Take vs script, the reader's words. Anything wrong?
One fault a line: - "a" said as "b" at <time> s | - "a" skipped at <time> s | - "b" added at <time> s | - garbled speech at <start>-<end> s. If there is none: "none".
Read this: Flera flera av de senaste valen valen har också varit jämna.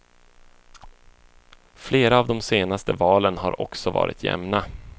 - "flera" skipped at 2.2 s
- "valen" skipped at 3.4 s